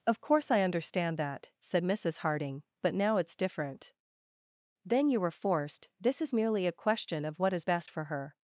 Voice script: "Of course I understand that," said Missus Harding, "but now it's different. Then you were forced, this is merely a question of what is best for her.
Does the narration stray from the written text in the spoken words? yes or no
no